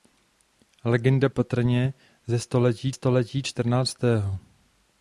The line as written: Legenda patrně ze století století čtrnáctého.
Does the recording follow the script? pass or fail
pass